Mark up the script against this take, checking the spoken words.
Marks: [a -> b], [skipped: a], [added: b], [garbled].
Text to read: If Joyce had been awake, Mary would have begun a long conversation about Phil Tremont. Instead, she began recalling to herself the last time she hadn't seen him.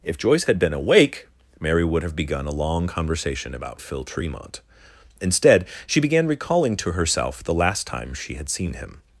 If Joyce had been awake, Mary would have begun a long conversation about Phil Tremont. Instead, she began recalling to herself the last time she [hadn't -> had] seen him.